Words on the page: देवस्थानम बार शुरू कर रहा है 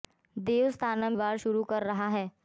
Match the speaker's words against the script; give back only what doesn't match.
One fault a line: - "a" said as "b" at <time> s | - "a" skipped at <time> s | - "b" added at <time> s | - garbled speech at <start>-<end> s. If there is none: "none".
none